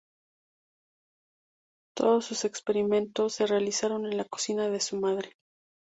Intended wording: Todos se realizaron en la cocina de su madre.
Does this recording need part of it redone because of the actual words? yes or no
yes